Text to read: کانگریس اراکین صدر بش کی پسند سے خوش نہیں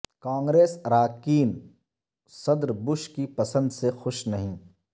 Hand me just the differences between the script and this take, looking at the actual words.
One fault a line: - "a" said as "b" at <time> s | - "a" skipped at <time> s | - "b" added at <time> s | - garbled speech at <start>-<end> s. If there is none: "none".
none